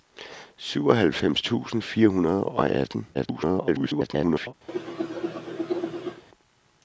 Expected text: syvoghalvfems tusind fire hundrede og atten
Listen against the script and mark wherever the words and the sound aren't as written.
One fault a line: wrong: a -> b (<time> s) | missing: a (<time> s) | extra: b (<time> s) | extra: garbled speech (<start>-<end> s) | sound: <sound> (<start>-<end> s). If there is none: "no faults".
extra: garbled speech (3.1-4.5 s)
sound: cough (4.7-6.2 s)